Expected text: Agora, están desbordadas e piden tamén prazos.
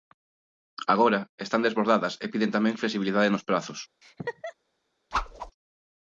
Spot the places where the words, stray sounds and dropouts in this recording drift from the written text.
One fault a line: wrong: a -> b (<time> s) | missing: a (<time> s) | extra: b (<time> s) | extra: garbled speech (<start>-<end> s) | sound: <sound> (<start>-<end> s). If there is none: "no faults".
extra: flexibilidade nos (2.8 s)
sound: laugh (4.0-4.5 s)
sound: whoosh (5.1-5.5 s)